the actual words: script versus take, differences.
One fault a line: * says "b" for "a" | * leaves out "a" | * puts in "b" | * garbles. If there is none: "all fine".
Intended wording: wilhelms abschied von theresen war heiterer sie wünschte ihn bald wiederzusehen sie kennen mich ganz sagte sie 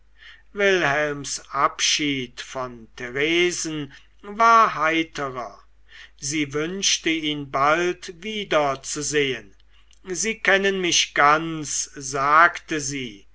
all fine